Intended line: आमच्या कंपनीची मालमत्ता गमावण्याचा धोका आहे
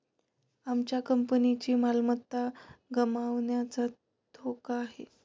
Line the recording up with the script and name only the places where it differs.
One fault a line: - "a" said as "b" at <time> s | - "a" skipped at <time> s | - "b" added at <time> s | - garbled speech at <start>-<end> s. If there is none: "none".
none